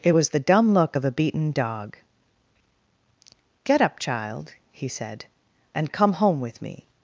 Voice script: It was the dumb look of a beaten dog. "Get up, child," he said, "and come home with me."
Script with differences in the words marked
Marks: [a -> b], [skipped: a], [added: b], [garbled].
It was the dumb look of a beaten dog. "Get up, child," he said, "and come home with me."